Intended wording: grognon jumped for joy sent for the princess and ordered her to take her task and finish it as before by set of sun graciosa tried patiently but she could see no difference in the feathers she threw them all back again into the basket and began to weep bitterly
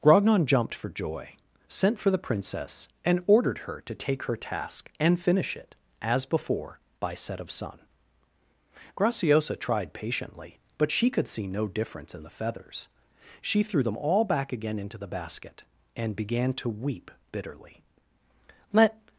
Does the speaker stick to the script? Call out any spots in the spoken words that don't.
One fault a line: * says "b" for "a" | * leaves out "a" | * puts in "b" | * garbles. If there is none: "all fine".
* puts in "let"